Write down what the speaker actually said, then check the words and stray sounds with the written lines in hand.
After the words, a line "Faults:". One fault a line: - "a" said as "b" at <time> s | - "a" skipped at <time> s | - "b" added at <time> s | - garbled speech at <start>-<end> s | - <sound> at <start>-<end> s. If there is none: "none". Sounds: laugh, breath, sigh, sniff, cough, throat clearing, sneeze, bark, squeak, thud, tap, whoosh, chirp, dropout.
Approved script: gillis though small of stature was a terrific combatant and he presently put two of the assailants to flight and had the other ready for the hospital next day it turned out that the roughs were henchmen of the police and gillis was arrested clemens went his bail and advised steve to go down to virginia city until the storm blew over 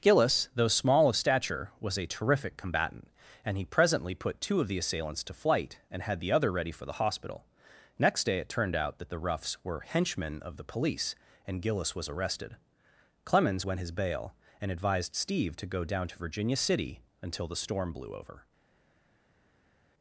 gillis though small of stature was a terrific combatant and he presently put two of the assailants to flight and had the other ready for the hospital next day it turned out that the roughs were henchmen of the police and gillis was arrested clemens went his bail and advised steve to go down to virginia city until the storm blew over
Faults:
none